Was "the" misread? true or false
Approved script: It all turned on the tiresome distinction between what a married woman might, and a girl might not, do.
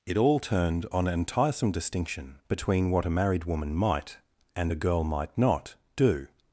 true